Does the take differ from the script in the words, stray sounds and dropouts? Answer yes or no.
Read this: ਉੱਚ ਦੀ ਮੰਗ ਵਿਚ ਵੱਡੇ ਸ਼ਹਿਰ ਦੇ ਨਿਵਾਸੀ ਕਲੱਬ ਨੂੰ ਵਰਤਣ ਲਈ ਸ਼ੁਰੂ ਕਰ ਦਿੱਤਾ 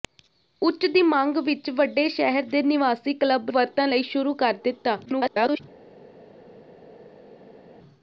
yes